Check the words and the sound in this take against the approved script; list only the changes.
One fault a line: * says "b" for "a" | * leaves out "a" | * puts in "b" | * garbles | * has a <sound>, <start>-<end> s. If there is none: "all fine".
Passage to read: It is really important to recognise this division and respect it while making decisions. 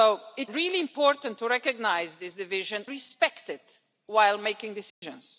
* leaves out "is"
* leaves out "and"
* has a dropout, 4.9-5.0 s